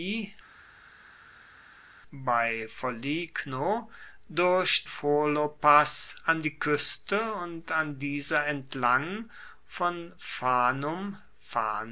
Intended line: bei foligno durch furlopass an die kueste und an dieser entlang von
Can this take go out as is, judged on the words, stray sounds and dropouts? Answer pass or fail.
pass